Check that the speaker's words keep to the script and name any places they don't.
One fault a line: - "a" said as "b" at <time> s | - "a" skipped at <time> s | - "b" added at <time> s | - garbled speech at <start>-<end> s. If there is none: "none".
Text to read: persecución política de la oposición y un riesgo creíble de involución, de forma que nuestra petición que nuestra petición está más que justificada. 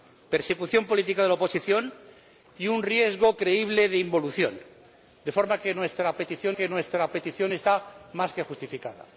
none